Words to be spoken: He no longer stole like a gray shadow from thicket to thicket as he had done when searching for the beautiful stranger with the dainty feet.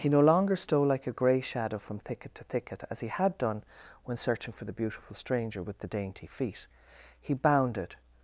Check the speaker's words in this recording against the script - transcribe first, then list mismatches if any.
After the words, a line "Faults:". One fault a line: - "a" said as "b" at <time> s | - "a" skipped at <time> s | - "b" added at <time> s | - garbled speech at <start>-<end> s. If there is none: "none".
He no longer stole like a gray shadow from thicket to thicket as he had done when searching for the beautiful stranger with the dainty feet. He bounded
Faults:
- "He bounded" added at 7.2 s